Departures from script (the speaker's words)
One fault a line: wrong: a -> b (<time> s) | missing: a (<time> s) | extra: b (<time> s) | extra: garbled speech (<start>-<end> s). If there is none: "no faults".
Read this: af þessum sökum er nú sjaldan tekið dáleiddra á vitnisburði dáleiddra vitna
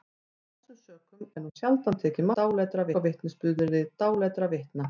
no faults